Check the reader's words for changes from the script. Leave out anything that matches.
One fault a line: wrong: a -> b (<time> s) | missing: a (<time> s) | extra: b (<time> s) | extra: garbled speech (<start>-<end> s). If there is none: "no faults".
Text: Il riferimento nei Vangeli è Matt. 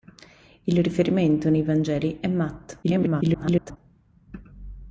extra: garbled speech (2.8-3.8 s)